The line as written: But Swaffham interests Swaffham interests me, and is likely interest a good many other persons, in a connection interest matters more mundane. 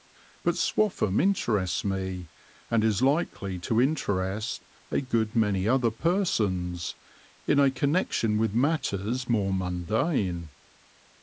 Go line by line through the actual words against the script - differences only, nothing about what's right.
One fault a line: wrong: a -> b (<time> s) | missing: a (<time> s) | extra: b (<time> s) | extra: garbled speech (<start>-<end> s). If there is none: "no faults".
missing: Swaffham interests (1.9 s)
extra: to (3.6 s)
wrong: interest -> with (8.4 s)